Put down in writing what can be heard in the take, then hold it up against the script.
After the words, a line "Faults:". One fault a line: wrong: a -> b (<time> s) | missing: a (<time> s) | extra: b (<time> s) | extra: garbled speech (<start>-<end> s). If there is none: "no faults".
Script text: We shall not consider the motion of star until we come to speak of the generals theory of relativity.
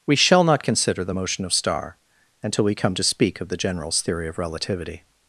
We shall not consider the motion of star until we come to speak of the generals theory of relativity.
Faults:
no faults